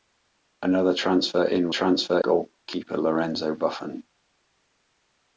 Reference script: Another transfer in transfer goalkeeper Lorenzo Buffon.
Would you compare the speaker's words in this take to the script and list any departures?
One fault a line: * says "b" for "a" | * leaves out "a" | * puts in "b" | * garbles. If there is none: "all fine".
all fine